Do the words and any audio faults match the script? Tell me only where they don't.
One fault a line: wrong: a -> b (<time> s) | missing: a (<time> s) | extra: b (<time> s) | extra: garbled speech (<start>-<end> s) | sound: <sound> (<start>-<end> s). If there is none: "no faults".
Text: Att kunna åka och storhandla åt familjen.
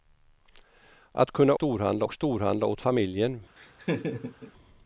wrong: åka -> storhandla (1.5 s)
sound: laugh (3.6-4.5 s)